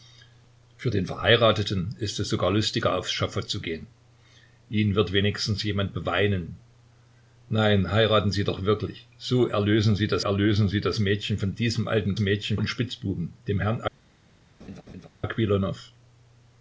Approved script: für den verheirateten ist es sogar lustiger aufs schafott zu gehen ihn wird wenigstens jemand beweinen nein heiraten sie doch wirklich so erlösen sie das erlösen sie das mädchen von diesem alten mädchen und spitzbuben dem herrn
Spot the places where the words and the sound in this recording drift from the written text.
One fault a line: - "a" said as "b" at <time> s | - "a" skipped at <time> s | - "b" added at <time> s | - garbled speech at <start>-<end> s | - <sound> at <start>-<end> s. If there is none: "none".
- laugh at 14.6-15.1 s